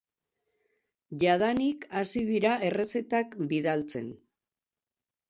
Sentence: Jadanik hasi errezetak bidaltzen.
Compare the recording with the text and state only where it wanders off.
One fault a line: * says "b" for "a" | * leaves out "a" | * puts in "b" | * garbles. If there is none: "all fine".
* puts in "dira"